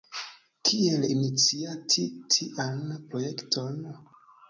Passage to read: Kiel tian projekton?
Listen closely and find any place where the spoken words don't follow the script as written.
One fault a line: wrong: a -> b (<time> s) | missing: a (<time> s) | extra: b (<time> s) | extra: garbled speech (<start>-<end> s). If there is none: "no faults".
extra: iniciati (1.1 s)